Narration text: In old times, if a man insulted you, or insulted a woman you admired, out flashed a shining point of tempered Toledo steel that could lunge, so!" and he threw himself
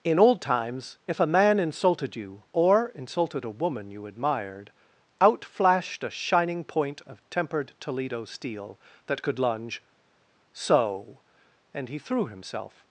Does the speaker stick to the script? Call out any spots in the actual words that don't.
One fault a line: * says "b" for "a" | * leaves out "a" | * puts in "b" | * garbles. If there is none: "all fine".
all fine